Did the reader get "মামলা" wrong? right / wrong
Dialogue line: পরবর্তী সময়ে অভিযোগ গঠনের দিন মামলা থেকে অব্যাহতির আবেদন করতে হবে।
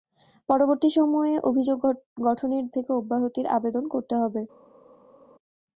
wrong